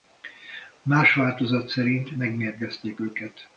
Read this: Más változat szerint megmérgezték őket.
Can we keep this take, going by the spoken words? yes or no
yes